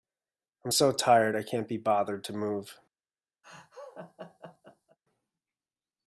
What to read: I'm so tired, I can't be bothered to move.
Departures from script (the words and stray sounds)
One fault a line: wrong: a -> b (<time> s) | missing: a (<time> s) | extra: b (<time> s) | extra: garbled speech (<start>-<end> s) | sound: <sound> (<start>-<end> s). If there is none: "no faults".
sound: laugh (3.4-5.0 s)